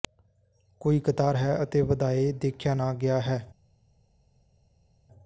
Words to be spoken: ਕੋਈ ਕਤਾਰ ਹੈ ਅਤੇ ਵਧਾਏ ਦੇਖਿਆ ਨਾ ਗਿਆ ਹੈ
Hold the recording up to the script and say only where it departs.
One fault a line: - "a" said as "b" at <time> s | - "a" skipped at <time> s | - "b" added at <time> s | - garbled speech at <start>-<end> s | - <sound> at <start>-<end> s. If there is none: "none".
none